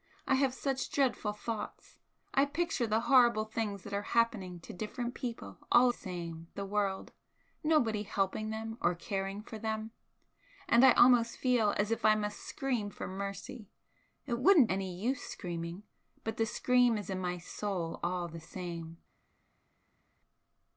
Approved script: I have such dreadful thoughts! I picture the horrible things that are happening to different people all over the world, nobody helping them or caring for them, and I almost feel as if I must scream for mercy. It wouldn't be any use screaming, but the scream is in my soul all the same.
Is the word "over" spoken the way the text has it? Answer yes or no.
no